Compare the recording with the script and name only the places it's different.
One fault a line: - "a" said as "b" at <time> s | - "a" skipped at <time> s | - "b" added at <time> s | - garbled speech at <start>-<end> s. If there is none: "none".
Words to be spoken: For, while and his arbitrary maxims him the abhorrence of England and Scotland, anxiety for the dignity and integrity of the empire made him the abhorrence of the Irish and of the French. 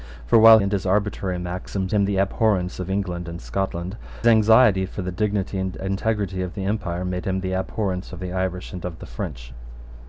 none